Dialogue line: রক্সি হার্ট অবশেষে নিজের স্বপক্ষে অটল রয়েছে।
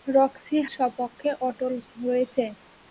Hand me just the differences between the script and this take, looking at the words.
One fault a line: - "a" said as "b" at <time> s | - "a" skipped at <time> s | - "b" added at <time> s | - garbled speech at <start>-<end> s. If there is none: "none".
- "হার্ট অবশেষে নিজের" skipped at 0.6 s